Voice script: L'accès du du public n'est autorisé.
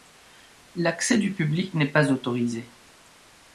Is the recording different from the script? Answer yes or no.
yes